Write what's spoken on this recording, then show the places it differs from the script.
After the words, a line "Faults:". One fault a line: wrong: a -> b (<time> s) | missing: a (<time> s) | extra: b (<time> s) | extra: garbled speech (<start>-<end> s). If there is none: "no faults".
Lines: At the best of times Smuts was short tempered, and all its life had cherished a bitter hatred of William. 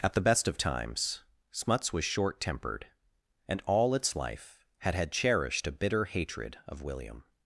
At the best of times Smuts was short tempered, and all its life had had cherished a bitter hatred of William.
Faults:
extra: had (5.0 s)